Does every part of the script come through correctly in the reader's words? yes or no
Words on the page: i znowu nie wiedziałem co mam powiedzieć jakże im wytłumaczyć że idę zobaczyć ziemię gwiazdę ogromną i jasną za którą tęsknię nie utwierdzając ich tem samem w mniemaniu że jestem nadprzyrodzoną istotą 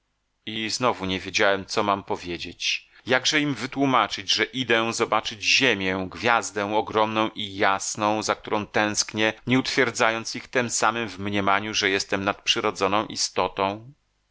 yes